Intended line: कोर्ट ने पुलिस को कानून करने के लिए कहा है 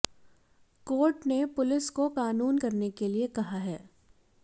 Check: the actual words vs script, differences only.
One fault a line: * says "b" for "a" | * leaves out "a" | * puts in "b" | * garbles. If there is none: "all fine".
all fine